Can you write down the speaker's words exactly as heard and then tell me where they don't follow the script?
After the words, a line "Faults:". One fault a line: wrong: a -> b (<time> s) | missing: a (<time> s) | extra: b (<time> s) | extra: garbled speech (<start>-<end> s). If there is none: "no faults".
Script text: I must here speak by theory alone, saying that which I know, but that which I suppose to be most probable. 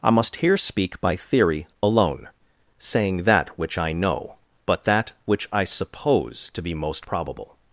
I must here speak by theory alone, saying that which I know, but that which I suppose to be most probable.
Faults:
no faults